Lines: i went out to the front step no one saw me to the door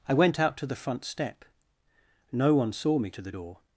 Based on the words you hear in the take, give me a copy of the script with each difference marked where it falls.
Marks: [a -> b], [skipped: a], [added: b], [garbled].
i went out to the front step no one saw me to the door